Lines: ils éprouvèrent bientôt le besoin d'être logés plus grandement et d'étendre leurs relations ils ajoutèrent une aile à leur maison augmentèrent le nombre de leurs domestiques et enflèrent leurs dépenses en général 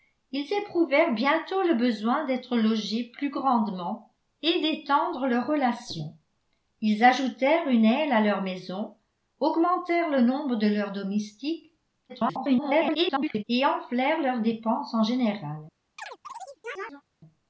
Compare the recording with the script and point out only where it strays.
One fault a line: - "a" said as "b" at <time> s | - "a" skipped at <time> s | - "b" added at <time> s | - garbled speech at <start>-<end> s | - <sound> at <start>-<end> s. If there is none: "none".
- garbled speech at 12.1-13.4 s
- chirp at 16.0-17.0 s